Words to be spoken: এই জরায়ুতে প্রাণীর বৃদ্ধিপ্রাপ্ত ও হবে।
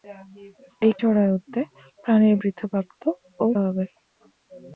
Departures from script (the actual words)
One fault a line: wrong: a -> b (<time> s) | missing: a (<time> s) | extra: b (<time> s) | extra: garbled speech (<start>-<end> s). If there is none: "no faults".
no faults